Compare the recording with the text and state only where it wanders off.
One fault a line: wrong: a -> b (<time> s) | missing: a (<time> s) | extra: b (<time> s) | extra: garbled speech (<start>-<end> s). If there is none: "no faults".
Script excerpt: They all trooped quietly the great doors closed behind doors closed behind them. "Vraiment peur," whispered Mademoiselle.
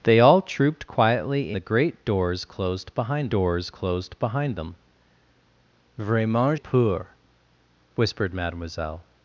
no faults